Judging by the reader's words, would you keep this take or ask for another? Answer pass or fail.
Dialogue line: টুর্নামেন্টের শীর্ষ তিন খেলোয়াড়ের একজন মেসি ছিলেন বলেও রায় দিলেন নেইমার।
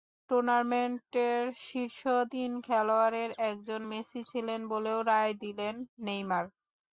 pass